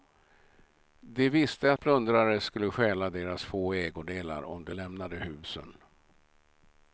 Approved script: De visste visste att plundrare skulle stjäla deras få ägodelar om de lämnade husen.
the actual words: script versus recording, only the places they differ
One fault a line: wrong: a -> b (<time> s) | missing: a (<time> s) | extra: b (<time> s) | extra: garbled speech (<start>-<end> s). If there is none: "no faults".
missing: visste (1.7 s)